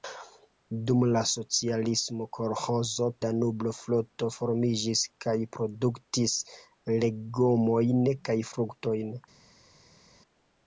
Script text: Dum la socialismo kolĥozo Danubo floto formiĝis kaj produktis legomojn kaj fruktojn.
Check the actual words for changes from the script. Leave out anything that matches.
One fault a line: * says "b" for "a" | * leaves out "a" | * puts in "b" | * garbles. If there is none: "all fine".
all fine